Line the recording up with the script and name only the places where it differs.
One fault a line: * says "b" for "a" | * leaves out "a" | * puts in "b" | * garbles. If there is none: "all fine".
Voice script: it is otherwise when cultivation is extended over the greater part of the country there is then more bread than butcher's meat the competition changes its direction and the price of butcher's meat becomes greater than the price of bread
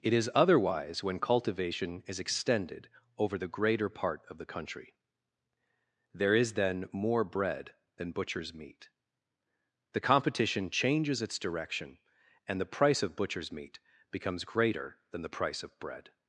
all fine